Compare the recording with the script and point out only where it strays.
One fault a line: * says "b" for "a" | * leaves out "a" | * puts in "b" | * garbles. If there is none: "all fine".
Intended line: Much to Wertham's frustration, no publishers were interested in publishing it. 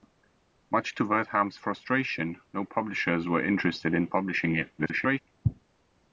* garbles